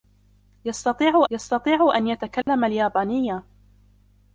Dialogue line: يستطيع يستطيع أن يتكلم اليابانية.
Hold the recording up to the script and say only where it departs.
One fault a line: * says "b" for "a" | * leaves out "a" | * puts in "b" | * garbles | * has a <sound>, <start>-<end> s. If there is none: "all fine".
* has a dropout, 2.4-2.5 s